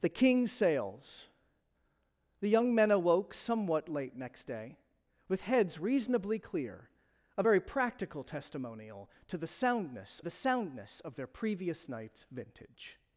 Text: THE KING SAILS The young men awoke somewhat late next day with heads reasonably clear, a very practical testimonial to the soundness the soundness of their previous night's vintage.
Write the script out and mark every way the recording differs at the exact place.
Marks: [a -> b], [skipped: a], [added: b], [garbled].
THE KING SAILS The young men awoke somewhat late next day with heads reasonably clear, a very practical testimonial to the soundness the soundness of their previous night's vintage.